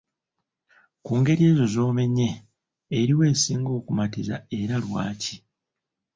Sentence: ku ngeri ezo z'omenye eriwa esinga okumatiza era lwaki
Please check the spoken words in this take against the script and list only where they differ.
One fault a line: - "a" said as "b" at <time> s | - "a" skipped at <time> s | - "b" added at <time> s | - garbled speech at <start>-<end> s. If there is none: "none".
none